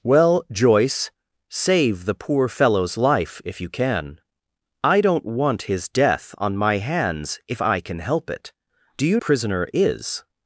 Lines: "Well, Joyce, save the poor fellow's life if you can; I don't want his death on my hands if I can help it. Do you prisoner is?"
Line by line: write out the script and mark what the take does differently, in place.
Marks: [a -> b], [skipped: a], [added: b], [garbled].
"Well, Joyce, save the poor fellow's life if you can; I don't want his death on my hands if I can help it. Do you prisoner is?"